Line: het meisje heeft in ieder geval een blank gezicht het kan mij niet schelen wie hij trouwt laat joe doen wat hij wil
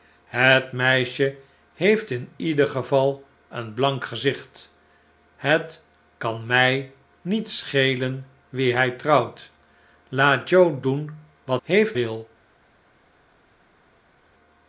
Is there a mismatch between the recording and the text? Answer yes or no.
yes